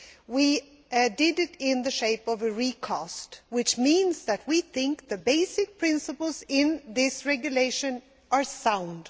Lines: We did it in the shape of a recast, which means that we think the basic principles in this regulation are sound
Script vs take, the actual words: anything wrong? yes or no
no